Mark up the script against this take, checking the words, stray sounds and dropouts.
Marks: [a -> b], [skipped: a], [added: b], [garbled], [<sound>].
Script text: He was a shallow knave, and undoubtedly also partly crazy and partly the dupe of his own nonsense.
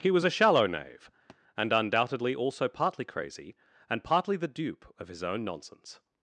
He was a shallow knave, [thud] and undoubtedly also partly crazy and partly the dupe of his own nonsense.